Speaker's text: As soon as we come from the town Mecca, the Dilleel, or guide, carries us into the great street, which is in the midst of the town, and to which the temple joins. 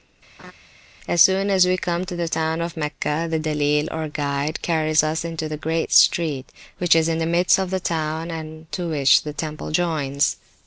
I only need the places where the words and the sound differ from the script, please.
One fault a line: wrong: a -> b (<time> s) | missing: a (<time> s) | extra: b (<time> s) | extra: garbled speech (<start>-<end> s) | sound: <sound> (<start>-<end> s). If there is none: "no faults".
sound: laugh (0.4-0.5 s)
wrong: from -> to (2.0 s)
extra: of (2.6 s)